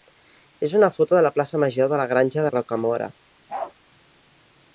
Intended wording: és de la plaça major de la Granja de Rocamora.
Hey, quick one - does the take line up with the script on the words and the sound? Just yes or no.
no